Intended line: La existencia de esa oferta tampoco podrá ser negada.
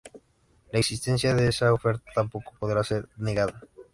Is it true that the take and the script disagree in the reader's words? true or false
false